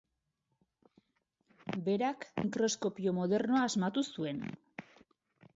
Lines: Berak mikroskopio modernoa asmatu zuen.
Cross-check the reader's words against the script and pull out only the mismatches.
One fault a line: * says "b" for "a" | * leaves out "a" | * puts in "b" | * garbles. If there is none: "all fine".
all fine